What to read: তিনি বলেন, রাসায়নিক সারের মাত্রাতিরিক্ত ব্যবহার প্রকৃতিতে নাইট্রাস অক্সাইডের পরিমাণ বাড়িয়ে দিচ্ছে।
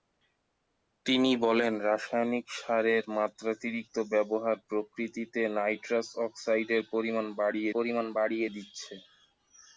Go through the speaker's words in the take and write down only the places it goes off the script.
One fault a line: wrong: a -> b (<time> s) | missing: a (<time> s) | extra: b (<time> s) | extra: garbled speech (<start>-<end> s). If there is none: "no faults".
extra: পরিমাণ বাড়িয়ে (7.7 s)